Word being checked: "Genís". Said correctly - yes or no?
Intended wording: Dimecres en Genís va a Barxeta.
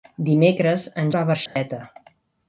no